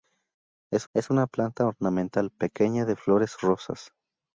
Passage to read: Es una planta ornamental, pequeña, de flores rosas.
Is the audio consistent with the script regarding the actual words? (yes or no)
no